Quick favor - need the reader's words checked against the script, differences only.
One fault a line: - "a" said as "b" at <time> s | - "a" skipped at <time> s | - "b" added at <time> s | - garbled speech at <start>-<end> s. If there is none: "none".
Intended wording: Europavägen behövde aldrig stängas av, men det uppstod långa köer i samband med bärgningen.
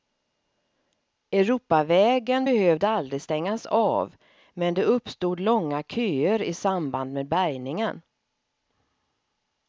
none